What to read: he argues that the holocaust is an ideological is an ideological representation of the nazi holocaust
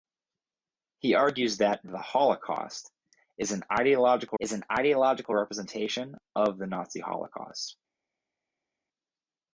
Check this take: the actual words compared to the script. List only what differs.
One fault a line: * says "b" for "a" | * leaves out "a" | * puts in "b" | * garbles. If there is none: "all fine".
all fine